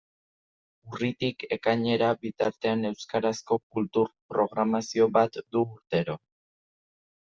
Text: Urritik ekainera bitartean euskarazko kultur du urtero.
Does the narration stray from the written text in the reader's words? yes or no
yes